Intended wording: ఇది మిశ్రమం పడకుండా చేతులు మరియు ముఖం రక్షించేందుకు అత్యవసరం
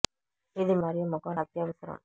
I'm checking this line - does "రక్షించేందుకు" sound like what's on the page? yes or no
no